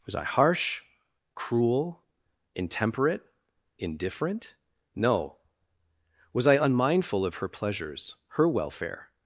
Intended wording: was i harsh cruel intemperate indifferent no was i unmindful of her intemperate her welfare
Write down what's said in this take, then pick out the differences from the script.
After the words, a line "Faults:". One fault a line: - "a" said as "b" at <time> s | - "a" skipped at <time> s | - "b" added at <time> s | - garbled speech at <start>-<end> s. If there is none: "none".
was i harsh cruel intemperate indifferent no was i unmindful of her pleasures her welfare
Faults:
- "intemperate" said as "pleasures" at 7.5 s